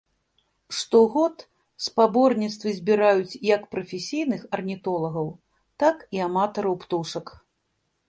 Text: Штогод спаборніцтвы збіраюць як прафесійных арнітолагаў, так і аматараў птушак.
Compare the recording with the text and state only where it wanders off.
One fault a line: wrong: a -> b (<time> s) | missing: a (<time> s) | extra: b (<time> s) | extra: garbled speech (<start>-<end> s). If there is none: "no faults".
no faults